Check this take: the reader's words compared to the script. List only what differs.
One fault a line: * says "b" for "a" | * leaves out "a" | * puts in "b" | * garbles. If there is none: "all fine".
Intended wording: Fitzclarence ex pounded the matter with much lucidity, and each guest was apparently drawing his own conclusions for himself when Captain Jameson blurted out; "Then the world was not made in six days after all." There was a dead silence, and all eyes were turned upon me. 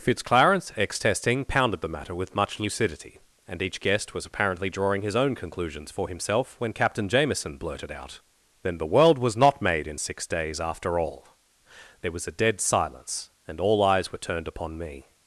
* puts in "testing"